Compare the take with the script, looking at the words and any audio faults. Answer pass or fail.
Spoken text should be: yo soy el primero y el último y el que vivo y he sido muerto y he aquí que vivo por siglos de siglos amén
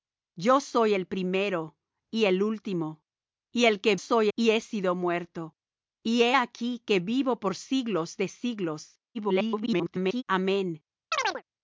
fail